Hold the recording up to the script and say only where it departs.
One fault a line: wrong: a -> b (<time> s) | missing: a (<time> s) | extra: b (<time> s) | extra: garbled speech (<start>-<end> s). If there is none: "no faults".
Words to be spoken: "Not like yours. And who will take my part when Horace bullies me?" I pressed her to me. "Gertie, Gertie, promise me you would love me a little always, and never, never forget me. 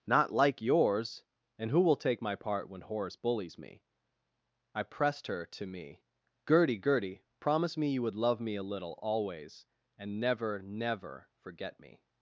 no faults